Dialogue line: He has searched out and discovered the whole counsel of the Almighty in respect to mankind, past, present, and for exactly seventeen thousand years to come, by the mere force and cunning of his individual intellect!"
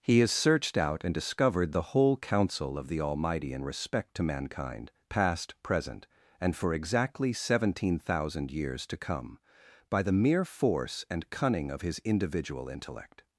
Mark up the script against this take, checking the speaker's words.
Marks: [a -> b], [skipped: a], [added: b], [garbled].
He has searched out and discovered the whole counsel of the Almighty in respect to mankind, past, present, and for exactly seventeen thousand years to come, by the mere force and cunning of his individual intellect!"